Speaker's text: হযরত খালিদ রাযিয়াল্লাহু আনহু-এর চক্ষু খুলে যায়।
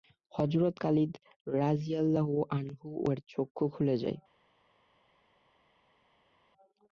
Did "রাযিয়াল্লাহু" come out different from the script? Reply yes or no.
no